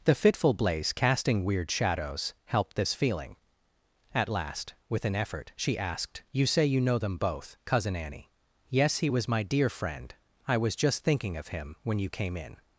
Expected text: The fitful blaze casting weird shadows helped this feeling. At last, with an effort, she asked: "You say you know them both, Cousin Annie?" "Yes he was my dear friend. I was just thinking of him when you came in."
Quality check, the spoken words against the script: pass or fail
pass